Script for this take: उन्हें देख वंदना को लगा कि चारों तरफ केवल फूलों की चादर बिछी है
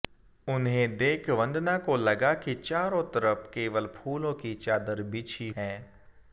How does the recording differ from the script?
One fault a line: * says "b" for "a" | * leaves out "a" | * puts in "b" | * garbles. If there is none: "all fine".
all fine